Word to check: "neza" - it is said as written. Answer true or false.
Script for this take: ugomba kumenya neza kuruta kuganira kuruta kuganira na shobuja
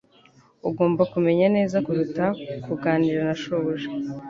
true